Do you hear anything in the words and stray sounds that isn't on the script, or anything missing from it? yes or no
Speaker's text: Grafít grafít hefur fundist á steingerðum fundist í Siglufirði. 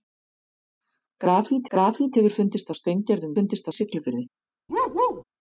yes